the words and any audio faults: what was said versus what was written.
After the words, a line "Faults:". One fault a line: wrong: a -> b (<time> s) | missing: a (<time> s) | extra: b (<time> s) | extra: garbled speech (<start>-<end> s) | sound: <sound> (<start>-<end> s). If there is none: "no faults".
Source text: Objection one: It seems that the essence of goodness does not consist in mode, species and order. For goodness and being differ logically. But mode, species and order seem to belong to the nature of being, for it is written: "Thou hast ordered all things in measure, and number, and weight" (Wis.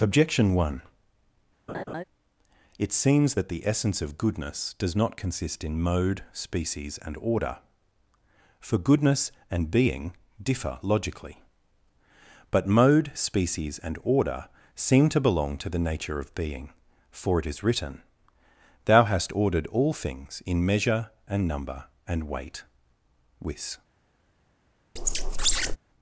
Objection one: It seems that the essence of goodness does not consist in mode, species and order. For goodness and being differ logically. But mode, species and order seem to belong to the nature of being, for it is written: "Thou hast ordered all things in measure, and number, and weight" (Wis.
Faults:
sound: laugh (1.7-2.0 s)
sound: squeak (25.0-25.8 s)